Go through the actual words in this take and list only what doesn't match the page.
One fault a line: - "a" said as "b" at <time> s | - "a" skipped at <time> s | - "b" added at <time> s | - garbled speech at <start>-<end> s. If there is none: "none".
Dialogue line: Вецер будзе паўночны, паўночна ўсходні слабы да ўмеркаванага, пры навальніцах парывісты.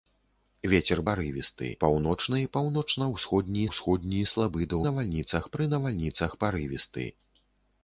- "будзе" said as "парывісты" at 1.1 s
- "ўсходні" added at 3.7 s
- "ўмеркаванага" said as "навальніцах" at 4.9 s